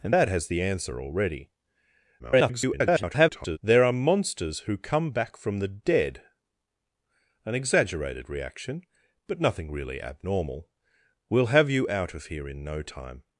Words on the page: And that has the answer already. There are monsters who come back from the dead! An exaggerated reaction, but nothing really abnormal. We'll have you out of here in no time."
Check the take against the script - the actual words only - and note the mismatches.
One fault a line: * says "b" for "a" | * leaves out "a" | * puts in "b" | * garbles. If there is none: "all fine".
* garbles